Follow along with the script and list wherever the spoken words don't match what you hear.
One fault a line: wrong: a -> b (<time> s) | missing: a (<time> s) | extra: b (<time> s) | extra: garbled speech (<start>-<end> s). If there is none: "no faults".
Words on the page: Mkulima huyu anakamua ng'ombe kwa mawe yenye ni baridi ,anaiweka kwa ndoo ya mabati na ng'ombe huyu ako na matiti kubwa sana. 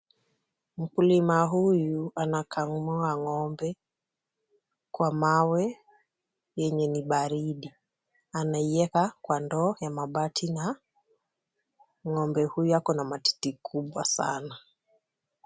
no faults